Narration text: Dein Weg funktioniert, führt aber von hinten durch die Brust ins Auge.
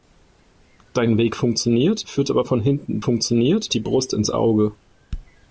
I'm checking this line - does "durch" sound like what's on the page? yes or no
no